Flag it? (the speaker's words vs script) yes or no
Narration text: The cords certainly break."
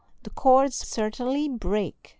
no